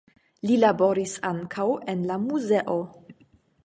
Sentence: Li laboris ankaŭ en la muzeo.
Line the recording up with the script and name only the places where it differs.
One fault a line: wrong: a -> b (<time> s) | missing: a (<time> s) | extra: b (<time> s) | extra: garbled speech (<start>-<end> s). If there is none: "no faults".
no faults